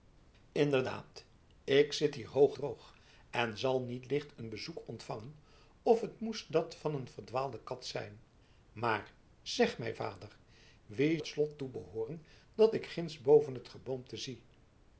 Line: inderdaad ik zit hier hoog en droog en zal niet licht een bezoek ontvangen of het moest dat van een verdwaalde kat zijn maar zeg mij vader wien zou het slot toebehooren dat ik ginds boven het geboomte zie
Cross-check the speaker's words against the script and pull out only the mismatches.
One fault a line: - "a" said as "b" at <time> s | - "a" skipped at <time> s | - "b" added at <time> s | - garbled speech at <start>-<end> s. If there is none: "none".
- "en" skipped at 2.6 s
- "zou" skipped at 11.2 s